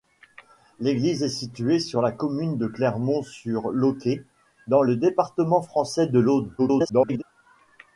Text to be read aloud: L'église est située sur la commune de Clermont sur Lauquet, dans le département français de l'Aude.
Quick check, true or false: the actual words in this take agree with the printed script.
false